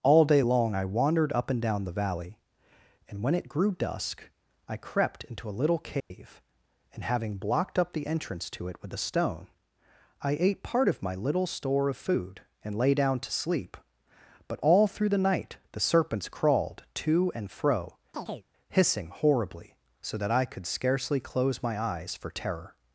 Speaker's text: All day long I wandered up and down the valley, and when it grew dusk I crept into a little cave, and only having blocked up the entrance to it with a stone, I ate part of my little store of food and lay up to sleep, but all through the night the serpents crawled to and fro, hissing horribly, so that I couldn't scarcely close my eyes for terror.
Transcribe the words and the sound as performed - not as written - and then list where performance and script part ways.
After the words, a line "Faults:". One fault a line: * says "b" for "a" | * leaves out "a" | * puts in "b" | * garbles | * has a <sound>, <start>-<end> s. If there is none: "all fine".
All day long I wandered up and down the valley, and when it grew dusk I crept into a little cave, and having blocked up the entrance to it with a stone, I ate part of my little store of food and lay down to sleep, but all through the night the serpents crawled to and fro, hissing horribly, so that I could scarcely close my eyes for terror.
Faults:
* has a dropout, 6.0-6.1 s
* leaves out "only"
* says "down" for "up"
* has a chirp, 18.1-18.5 s
* says "could" for "couldn't"